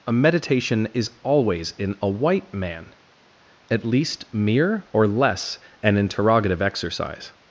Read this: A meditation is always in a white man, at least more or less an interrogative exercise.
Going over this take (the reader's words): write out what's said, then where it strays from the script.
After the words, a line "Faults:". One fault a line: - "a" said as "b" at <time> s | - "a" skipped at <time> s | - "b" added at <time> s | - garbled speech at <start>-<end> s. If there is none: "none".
A meditation is always in a white man, at least mere or less an interrogative exercise.
Faults:
- "more" said as "mere" at 4.3 s